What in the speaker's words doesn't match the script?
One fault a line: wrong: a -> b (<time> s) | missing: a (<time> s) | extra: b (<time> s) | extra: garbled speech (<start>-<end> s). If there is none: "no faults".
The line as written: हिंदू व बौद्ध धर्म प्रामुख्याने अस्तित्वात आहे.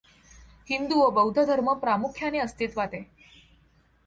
no faults